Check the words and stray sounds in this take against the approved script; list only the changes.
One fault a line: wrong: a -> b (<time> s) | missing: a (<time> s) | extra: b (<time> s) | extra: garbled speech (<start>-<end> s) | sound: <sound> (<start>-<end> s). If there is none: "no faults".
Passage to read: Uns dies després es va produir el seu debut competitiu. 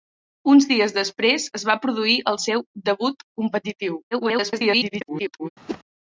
extra: garbled speech (4.1-5.5 s)
sound: whoosh (5.7-5.8 s)